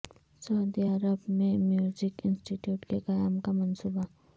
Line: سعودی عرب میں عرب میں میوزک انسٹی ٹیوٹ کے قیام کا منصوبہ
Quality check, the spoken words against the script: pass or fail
fail